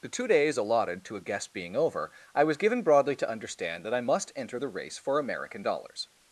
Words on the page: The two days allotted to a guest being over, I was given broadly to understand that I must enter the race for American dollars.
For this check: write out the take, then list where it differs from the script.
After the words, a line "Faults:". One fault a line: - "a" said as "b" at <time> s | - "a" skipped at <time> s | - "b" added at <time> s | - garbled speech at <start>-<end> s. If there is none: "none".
The two days allotted to a guest being over, I was given broadly to understand that I must enter the race for American dollars.
Faults:
none